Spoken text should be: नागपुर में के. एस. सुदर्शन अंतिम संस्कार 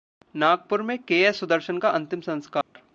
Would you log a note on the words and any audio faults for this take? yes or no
yes